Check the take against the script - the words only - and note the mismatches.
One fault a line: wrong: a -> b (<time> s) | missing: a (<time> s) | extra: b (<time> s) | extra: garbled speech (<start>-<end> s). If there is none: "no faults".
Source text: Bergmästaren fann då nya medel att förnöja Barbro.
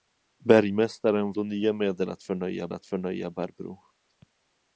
missing: fann (1.3 s)
extra: att förnöja (2.7 s)